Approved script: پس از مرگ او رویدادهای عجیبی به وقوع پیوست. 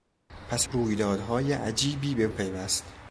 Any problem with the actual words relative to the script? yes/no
yes